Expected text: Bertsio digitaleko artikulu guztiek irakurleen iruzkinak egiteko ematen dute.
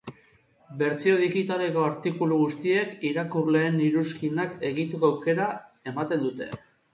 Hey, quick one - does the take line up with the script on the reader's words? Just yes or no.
no